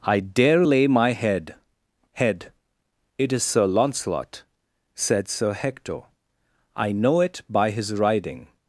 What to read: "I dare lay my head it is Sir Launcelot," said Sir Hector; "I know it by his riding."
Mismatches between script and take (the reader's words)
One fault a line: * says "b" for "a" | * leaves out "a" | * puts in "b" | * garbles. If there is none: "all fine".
* puts in "head"